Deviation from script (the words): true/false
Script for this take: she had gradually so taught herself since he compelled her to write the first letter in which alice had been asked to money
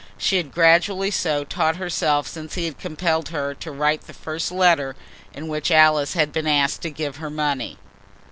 true